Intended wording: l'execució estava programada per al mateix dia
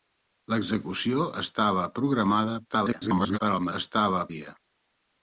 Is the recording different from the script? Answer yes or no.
yes